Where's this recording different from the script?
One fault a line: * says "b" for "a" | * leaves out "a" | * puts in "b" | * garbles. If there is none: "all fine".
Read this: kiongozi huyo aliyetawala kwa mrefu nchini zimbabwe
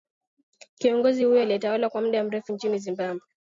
* puts in "muda"